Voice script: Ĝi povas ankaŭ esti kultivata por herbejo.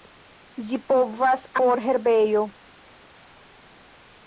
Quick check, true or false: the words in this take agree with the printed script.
false